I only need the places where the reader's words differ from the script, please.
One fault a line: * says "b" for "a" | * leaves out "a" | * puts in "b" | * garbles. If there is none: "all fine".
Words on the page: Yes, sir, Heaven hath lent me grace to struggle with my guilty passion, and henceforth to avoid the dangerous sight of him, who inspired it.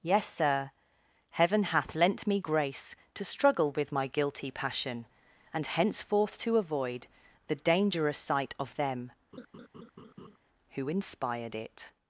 * says "them" for "him"